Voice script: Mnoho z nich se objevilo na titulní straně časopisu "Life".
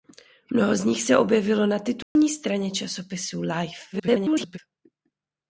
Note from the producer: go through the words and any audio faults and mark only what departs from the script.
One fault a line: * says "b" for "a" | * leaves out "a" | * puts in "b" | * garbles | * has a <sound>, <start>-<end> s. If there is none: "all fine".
* has a dropout, 2.0-2.2 s
* garbles